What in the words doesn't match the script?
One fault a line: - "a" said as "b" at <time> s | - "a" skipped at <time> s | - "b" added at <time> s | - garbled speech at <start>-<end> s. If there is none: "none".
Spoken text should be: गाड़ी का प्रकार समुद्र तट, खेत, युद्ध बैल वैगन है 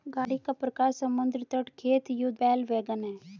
none